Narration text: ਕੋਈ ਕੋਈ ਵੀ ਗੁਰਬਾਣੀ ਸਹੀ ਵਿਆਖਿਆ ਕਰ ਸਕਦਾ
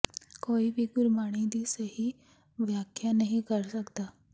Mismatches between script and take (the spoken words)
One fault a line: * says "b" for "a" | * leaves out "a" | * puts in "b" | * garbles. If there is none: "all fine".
* leaves out "ਕੋਈ"
* puts in "ਦੀ"
* puts in "ਨਹੀਂ"